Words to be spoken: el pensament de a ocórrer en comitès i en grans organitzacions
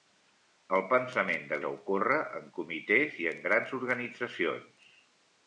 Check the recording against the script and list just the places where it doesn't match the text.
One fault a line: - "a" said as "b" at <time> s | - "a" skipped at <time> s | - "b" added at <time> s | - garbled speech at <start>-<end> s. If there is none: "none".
none